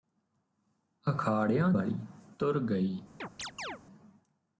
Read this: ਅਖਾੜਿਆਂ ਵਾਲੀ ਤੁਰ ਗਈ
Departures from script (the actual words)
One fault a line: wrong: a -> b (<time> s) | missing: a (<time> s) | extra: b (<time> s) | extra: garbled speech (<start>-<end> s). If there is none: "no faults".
no faults